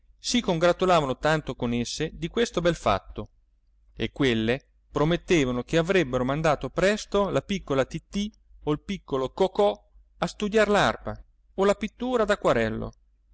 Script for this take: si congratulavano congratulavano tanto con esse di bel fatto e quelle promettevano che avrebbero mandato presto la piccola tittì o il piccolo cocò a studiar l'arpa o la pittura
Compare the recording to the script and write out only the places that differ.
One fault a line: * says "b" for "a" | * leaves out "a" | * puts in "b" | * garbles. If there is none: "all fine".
* leaves out "congratulavano"
* puts in "questo"